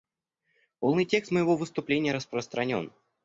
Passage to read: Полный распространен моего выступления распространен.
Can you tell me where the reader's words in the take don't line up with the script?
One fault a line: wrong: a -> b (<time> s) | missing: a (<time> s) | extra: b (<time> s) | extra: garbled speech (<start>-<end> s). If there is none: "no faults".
wrong: распространен -> текст (1.1 s)